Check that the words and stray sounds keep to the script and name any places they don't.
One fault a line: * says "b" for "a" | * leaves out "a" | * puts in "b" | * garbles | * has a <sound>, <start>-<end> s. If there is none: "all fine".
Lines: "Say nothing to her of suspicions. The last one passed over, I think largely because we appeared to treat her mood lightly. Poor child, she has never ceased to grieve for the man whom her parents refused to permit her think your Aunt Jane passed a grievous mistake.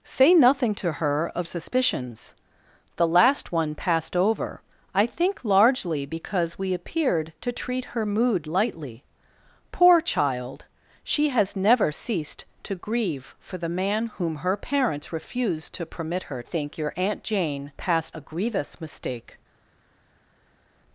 all fine